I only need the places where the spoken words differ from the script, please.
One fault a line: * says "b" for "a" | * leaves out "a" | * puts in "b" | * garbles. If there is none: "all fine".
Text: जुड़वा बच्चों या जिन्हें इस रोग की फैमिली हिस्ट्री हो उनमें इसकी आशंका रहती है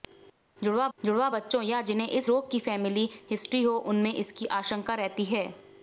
* puts in "जुड़वा"